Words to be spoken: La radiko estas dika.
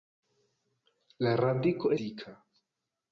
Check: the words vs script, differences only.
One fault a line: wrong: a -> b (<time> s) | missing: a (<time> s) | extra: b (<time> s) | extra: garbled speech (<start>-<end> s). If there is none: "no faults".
missing: estas (1.9 s)